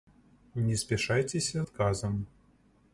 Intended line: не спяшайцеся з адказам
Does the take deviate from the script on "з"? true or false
true